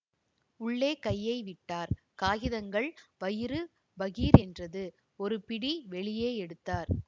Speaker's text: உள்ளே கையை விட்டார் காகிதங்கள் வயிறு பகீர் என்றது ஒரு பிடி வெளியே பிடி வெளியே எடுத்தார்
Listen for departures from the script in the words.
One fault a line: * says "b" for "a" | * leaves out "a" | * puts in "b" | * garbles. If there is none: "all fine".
* leaves out "பிடி வெளியே"